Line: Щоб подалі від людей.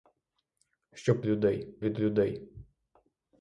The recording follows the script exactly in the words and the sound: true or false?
false